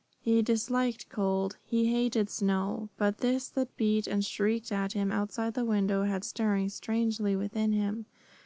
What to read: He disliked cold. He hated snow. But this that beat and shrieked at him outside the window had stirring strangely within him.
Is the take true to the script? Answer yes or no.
yes